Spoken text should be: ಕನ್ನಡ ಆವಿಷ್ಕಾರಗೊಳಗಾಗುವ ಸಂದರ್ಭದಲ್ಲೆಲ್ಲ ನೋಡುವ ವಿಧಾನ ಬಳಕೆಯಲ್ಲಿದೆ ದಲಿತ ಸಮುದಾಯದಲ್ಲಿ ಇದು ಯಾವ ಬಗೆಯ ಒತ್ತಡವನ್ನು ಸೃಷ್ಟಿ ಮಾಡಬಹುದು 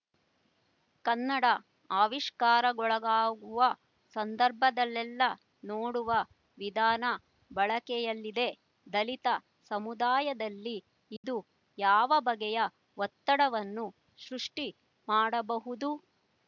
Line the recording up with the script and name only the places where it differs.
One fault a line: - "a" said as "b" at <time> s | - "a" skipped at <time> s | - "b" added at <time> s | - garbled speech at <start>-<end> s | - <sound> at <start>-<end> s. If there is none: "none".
- dropout at 11.2-11.2 s